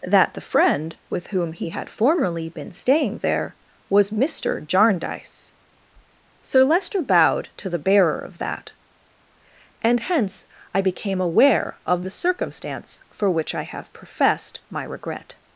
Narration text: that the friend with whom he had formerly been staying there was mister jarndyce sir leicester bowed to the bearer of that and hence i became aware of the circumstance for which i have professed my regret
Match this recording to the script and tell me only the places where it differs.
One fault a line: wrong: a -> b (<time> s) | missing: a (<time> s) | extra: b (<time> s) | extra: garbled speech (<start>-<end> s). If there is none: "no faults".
no faults